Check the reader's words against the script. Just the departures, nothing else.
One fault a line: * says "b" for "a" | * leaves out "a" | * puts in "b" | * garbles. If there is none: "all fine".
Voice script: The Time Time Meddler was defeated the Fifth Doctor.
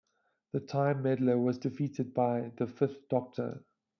* leaves out "Time"
* puts in "by"